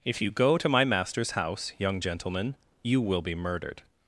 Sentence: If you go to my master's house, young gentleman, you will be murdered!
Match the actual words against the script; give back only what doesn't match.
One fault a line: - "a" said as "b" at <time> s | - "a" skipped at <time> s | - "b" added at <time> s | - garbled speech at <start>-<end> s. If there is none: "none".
none